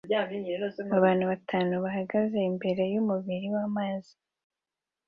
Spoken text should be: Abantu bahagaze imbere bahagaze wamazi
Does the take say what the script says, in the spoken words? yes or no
no